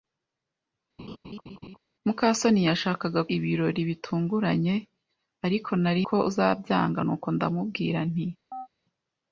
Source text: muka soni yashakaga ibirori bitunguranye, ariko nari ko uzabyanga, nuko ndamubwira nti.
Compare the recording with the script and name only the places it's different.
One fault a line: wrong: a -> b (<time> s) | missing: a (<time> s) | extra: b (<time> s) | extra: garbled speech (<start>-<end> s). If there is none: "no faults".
no faults